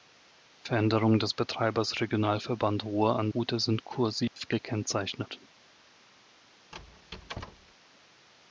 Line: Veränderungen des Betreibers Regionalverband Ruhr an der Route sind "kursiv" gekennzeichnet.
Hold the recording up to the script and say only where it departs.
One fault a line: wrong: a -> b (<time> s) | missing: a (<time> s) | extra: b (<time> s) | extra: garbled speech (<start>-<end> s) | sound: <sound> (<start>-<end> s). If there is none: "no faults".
missing: der (3.3 s)
sound: dropout (4.3-4.4 s)
sound: squeak (6.7-7.8 s)